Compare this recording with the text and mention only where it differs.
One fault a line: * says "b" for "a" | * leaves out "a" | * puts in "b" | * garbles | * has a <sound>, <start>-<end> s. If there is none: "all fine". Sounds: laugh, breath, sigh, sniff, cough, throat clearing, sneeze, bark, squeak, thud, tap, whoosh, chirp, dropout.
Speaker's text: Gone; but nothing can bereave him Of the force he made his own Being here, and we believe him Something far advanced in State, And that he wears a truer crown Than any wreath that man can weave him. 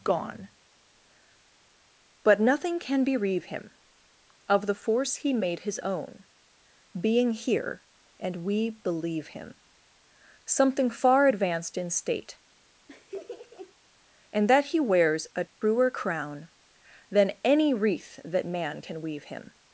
* has a laugh, 12.9-13.7 s
* has a dropout, 15.5-15.6 s